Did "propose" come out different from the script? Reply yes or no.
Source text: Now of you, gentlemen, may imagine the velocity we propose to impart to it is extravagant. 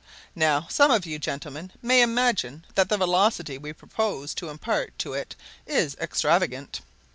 no